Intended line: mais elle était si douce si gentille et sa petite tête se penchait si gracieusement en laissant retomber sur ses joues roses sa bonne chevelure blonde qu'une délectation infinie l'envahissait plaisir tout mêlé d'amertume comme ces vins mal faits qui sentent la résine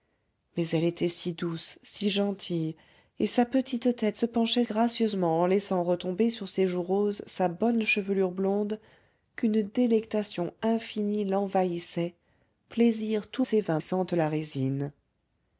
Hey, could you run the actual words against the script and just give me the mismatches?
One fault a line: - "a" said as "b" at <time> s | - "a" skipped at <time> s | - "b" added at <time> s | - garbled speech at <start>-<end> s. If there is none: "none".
- "si" skipped at 4.6 s
- "mêlé d'amertume comme" skipped at 13.4 s
- "mal faits qui" skipped at 13.8 s